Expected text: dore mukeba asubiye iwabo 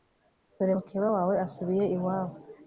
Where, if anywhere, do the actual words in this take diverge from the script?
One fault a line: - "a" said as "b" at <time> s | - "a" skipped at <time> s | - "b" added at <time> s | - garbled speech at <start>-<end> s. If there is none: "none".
- "wawe" added at 1.1 s